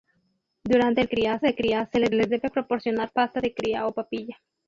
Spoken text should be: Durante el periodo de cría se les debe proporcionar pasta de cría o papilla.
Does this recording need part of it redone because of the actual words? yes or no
yes